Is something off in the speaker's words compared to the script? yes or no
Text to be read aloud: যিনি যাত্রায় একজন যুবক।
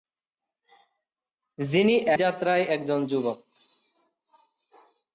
no